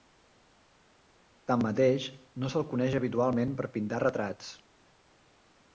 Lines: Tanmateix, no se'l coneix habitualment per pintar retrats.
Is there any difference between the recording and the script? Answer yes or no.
no